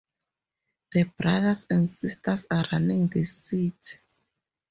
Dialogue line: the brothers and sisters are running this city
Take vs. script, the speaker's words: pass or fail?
pass